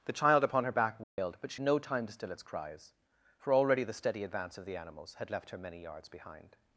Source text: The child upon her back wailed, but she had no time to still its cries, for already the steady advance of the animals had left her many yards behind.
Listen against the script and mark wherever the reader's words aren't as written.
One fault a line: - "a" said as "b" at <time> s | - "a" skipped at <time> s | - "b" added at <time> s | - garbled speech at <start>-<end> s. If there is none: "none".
- "had" skipped at 1.6 s